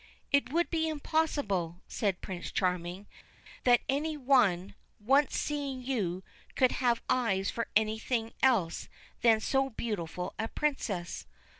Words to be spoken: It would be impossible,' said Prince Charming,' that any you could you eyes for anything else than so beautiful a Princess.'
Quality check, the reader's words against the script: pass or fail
fail